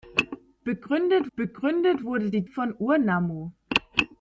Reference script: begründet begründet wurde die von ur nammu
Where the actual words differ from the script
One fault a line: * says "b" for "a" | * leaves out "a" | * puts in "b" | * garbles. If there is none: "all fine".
all fine